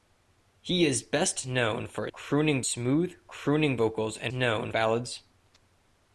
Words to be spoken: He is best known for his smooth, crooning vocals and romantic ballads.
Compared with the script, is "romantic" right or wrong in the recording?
wrong